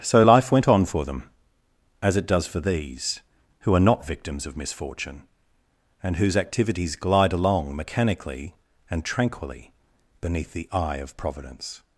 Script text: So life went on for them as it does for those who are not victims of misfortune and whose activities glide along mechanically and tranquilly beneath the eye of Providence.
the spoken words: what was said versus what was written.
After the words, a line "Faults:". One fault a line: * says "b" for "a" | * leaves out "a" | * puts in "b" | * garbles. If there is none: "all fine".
So life went on for them as it does for these who are not victims of misfortune and whose activities glide along mechanically and tranquilly beneath the eye of Providence.
Faults:
* says "these" for "those"